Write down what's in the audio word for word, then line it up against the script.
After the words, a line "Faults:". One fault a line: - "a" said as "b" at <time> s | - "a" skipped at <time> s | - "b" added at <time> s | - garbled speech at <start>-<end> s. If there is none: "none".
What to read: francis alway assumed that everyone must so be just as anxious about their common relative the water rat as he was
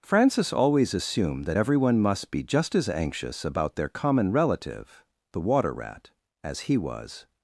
francis always assumed that everyone must be just as anxious about their common relative the water rat as he was
Faults:
- "alway" said as "always" at 0.5 s
- "so" skipped at 2.3 s